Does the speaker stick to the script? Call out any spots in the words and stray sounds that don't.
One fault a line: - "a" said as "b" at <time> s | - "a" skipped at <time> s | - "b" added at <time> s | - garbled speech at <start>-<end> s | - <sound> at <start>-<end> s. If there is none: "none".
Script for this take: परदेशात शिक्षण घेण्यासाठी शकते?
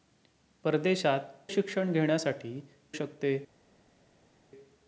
none